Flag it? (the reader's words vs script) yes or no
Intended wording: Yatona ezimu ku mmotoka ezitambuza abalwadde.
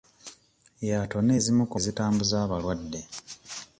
yes